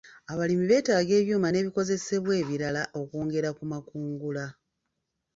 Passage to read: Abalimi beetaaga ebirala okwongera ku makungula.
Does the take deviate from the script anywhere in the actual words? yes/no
yes